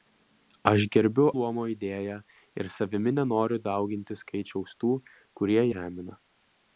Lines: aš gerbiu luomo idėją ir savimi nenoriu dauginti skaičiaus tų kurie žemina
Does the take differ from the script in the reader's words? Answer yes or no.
no